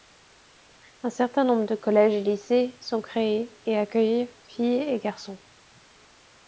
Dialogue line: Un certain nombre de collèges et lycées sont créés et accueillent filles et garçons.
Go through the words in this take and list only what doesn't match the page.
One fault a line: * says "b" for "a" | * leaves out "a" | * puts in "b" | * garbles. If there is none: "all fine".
all fine